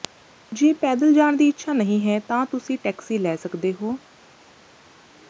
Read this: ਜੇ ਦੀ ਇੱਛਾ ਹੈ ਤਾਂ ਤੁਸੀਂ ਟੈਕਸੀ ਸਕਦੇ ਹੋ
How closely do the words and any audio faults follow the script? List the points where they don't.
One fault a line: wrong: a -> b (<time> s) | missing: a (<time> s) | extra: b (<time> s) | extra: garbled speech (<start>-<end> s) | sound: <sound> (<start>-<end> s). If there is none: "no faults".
extra: ਪੈਦਲ ਜਾਣ (0.8 s)
extra: ਨਹੀਂ (1.7 s)
extra: ਲੈ (3.2 s)